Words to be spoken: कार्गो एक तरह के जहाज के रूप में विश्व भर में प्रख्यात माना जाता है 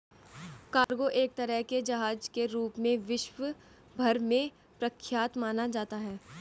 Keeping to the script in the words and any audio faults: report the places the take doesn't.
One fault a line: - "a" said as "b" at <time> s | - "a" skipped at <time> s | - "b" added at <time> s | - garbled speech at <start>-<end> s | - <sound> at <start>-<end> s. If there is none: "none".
- dropout at 0.8-0.9 s